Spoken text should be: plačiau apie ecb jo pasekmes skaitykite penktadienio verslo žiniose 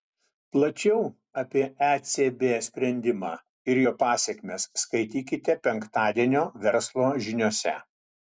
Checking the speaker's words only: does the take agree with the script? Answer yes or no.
no